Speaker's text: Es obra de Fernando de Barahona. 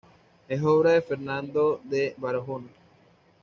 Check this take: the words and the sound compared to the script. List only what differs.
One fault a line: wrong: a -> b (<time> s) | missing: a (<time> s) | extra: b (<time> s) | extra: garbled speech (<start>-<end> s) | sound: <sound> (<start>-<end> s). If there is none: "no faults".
no faults